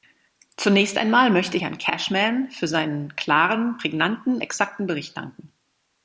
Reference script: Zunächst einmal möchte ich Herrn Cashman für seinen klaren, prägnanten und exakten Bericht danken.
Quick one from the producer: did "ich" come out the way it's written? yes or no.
no